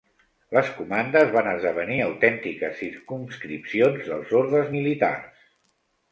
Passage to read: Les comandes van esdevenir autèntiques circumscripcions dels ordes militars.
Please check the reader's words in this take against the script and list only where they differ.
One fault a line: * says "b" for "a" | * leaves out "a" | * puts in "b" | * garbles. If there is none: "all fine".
all fine